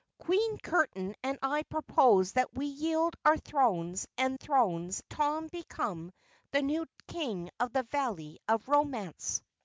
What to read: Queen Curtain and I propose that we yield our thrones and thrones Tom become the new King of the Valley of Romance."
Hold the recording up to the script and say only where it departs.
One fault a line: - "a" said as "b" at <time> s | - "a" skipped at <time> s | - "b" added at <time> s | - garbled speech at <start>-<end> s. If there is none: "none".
none